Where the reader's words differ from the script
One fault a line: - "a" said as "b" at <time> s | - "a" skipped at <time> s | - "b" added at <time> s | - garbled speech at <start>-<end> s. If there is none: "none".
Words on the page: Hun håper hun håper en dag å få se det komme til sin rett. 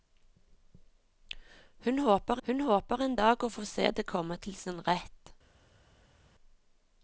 none